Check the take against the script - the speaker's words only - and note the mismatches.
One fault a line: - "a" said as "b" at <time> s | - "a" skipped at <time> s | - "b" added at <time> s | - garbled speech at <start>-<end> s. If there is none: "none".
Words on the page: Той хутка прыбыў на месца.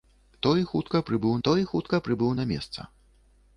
- "той хутка прыбыў" added at 1.5 s